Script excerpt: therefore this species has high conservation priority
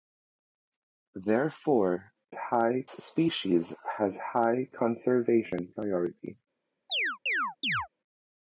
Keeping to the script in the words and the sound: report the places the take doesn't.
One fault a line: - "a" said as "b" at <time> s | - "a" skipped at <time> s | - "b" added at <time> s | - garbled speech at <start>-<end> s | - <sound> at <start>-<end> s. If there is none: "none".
- "this" said as "high" at 2.3 s
- chirp at 6.9-7.9 s